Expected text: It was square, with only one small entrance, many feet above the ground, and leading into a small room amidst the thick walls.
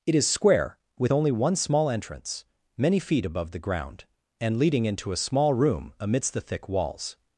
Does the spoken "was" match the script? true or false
false